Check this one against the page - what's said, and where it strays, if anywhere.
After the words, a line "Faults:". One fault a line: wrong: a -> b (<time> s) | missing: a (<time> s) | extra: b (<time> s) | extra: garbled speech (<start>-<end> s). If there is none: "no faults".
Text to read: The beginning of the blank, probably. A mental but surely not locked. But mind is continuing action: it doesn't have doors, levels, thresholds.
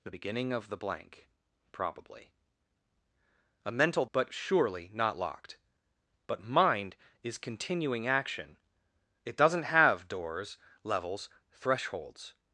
The beginning of the blank, probably. A mental but surely not locked. But mind is continuing action: it doesn't have doors, levels, thresholds.
Faults:
no faults